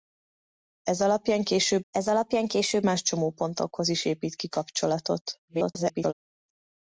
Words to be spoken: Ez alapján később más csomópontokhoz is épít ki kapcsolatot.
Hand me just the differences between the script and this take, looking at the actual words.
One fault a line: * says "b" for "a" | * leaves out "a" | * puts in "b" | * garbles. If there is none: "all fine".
* puts in "ez alapján később"
* garbles